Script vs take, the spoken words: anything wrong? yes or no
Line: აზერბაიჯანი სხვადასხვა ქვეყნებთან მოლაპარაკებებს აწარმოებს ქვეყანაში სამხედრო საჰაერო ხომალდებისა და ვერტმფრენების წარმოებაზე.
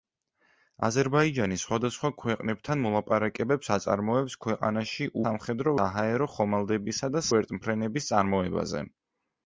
no